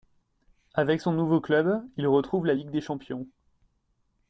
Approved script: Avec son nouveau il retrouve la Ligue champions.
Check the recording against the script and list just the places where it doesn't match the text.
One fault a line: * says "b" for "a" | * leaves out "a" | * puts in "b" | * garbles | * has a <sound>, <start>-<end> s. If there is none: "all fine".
* puts in "club"
* puts in "des"